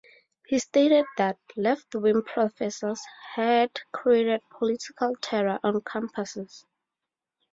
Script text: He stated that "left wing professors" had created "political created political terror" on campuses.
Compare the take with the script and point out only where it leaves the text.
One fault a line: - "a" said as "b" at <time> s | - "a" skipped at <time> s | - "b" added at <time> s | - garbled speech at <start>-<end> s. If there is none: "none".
- "created political" skipped at 5.2 s